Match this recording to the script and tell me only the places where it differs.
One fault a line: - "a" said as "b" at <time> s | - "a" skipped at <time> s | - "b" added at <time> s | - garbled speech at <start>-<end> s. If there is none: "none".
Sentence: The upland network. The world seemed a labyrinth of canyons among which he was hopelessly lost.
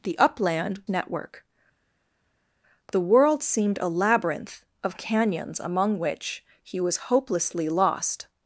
none